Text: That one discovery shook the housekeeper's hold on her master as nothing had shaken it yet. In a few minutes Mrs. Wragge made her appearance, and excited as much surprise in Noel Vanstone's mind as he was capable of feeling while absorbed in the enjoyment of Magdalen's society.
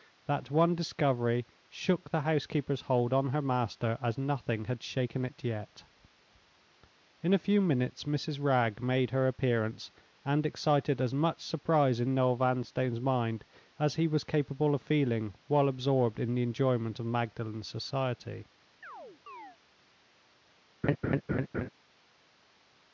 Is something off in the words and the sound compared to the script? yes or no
yes